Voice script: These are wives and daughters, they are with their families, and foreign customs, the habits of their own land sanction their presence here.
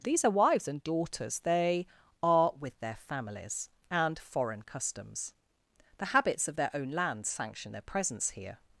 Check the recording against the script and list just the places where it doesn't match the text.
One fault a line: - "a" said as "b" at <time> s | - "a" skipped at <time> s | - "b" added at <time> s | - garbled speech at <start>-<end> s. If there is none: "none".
none